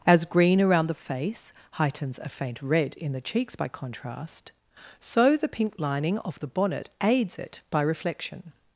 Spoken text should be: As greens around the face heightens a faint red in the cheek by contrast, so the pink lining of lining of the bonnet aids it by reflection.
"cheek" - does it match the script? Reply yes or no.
no